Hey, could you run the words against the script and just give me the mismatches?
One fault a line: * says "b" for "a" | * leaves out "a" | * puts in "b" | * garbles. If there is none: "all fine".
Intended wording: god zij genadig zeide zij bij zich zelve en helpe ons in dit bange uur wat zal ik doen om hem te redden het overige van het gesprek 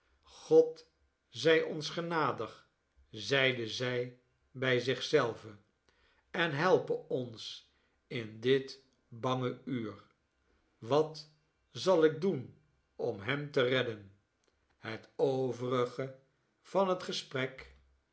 * puts in "ons"